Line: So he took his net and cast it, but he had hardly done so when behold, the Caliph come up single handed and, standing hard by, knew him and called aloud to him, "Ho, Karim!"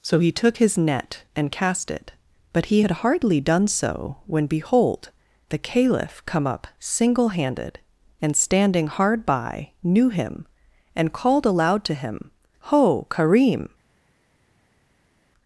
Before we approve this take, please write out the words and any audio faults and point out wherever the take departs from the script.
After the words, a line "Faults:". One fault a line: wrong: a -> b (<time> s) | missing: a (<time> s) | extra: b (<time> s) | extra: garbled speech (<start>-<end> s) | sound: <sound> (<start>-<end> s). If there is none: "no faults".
So he took his net and cast it, but he had hardly done so when behold, the Caliph come up single handed and, standing hard by, knew him and called aloud to him, "Ho, Karim!"
Faults:
no faults